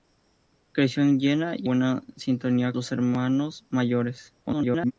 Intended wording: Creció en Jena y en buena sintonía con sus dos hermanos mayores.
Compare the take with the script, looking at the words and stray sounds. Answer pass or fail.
fail